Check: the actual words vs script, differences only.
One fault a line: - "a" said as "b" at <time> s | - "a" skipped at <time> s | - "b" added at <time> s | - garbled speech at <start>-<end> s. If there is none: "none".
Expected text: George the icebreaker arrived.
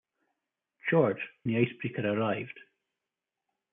none